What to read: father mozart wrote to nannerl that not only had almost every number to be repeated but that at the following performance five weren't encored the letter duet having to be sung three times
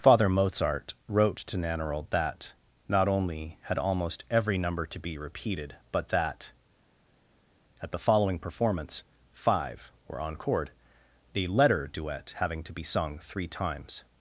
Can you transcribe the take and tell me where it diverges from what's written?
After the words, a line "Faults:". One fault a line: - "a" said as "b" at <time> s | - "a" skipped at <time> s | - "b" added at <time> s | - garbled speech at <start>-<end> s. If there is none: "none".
father mozart wrote to nannerl that not only had almost every number to be repeated but that at the following performance five were encored the letter duet having to be sung three times
Faults:
- "weren't" said as "were" at 10.1 s